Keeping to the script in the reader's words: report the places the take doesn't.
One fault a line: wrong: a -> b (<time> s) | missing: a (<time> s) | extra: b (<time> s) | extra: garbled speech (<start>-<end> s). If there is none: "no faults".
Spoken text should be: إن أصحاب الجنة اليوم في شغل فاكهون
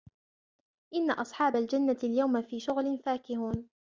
no faults